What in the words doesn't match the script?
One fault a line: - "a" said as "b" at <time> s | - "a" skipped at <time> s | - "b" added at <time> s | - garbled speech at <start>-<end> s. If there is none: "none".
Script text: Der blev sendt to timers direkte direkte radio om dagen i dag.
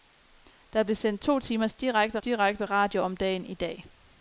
none